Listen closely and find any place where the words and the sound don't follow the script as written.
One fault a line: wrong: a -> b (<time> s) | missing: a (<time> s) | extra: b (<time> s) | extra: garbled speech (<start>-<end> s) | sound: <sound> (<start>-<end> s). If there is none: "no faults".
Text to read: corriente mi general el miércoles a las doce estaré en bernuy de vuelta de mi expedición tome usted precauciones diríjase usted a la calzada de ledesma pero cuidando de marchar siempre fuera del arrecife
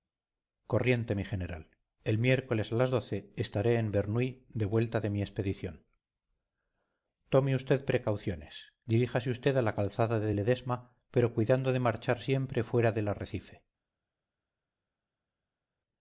no faults